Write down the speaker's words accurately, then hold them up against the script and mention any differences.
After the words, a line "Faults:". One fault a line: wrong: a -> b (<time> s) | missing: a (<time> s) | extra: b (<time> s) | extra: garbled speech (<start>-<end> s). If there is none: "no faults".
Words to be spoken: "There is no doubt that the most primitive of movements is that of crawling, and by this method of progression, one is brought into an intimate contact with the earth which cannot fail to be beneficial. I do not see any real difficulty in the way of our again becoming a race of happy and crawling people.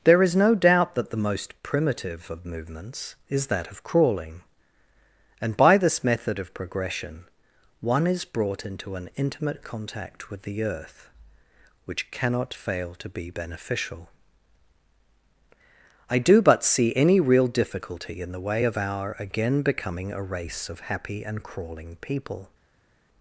"There is no doubt that the most primitive of movements is that of crawling, and by this method of progression, one is brought into an intimate contact with the earth which cannot fail to be beneficial. I do but see any real difficulty in the way of our again becoming a race of happy and crawling people.
Faults:
wrong: not -> but (16.4 s)